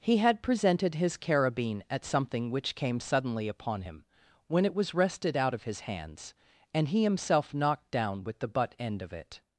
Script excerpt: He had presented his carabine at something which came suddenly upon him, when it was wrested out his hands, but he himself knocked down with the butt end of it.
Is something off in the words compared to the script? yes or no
yes